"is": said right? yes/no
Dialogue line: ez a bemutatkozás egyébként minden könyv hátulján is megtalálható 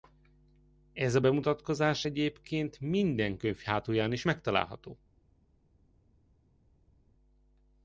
yes